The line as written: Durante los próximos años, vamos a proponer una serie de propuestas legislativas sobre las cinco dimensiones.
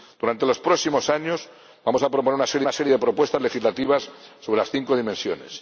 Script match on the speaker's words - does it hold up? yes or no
no